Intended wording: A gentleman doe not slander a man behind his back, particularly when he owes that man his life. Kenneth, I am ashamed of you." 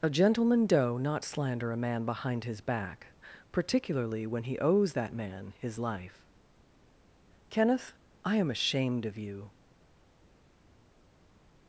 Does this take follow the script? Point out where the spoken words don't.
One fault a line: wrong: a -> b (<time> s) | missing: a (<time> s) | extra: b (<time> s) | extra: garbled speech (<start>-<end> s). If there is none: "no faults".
no faults